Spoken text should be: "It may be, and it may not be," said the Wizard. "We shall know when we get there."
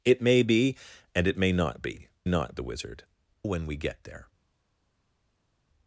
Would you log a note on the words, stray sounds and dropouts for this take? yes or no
yes